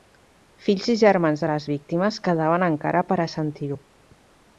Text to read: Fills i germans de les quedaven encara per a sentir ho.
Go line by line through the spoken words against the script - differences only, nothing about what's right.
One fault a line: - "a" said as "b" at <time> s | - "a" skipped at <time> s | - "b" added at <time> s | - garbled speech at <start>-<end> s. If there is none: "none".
- "víctimes" added at 1.7 s